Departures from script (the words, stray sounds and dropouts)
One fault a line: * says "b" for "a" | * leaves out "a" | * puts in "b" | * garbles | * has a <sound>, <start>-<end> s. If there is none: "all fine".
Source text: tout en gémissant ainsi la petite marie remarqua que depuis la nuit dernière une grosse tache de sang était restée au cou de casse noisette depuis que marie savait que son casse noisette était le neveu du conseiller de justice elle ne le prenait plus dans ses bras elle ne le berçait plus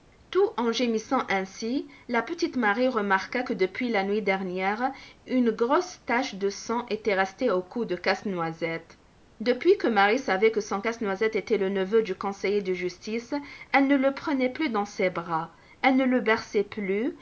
all fine